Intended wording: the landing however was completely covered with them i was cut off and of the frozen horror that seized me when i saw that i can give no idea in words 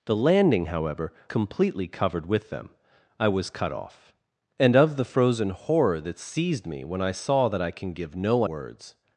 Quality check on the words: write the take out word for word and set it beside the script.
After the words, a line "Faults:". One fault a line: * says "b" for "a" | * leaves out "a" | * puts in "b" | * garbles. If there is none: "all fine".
the landing however completely covered with them i was cut off and of the frozen horror that seized me when i saw that i can give no words
Faults:
* leaves out "was"
* leaves out "idea in"